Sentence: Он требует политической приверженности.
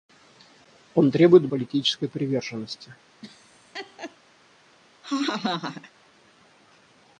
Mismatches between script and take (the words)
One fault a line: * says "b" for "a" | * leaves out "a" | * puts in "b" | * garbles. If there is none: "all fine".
all fine